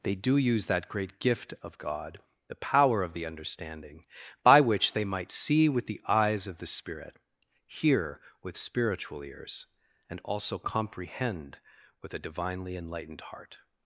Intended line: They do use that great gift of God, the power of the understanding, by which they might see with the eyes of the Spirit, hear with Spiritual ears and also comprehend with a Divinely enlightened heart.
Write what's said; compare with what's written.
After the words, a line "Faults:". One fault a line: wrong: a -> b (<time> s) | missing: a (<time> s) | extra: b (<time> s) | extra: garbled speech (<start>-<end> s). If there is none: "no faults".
They do use that great gift of God, the power of the understanding, by which they might see with the eyes of the Spirit, hear with Spiritual ears and also comprehend with a Divinely enlightened heart.
Faults:
no faults